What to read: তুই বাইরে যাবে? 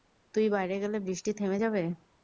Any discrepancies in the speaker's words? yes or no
yes